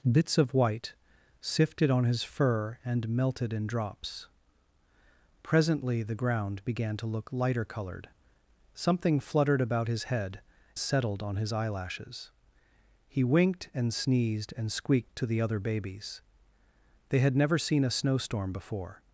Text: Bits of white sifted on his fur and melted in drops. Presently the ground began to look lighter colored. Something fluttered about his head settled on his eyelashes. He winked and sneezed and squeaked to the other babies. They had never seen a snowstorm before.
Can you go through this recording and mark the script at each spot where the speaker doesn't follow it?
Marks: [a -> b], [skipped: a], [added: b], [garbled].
Bits of white sifted on his fur and melted in drops. Presently the ground began to look lighter colored. Something fluttered about his head settled on his eyelashes. He winked and sneezed and squeaked to the other babies. They had never seen a snowstorm before.